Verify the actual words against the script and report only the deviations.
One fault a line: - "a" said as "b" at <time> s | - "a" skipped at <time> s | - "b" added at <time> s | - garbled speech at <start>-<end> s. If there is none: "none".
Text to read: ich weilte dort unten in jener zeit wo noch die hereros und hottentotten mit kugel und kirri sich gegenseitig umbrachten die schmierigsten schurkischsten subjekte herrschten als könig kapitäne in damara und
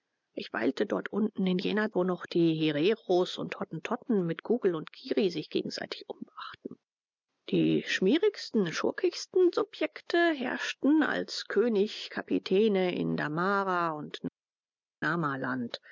- "zeit" skipped at 1.9 s